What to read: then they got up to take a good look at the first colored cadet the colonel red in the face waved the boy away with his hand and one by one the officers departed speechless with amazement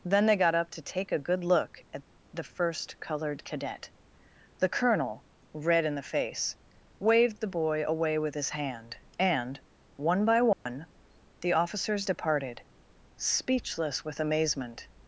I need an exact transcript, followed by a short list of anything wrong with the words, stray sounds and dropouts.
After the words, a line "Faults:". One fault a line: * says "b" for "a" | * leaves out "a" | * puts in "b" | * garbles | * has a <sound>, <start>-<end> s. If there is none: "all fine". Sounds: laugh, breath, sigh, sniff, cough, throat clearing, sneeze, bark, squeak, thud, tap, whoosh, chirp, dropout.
then they got up to take a good look at the first colored cadet the colonel red in the face waved the boy away with his hand and one by one the officers departed speechless with amazement
Faults:
* has a dropout, 10.5-10.7 s